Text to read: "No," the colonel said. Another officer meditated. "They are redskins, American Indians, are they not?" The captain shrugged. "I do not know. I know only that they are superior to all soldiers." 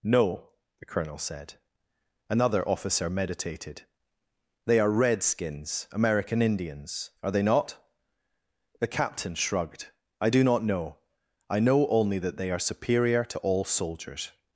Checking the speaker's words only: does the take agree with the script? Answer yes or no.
yes